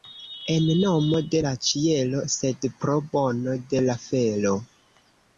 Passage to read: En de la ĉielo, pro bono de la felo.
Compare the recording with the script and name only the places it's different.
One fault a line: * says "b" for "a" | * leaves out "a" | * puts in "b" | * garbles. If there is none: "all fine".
* puts in "nomo"
* puts in "sed"